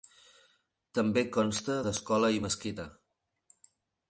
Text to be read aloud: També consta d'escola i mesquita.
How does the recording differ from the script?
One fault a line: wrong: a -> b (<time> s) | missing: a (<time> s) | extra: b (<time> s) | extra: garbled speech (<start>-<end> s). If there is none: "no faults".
no faults